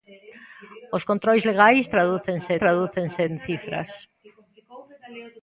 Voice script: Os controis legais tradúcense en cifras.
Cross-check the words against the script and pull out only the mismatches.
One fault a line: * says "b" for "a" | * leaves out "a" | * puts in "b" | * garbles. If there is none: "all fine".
* puts in "tradúcense"